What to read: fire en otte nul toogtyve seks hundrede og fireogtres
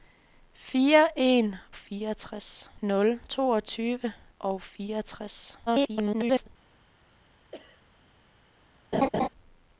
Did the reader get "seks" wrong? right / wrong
wrong